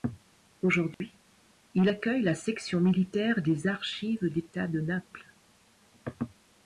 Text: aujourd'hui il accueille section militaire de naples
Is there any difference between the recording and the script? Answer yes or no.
yes